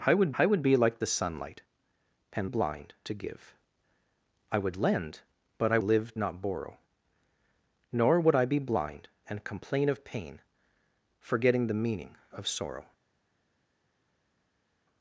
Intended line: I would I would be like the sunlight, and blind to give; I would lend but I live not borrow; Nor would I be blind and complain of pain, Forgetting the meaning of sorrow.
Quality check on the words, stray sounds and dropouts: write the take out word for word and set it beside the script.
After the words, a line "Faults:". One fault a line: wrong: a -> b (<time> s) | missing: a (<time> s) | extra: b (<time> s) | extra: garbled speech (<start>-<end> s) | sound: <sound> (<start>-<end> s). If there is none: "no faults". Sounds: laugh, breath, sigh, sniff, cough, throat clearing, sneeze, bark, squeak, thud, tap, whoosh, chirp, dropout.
I would I would be like the sunlight, and blind to give; I would lend but I live not borrow; Nor would I be blind and complain of pain, Forgetting the meaning of sorrow.
Faults:
no faults